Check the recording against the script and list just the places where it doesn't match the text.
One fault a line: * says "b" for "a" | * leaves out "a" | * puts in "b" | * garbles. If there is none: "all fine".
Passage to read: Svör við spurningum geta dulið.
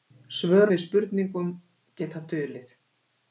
all fine